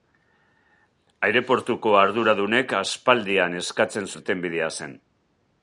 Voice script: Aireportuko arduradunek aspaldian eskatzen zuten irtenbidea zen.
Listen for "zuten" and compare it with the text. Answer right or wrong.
wrong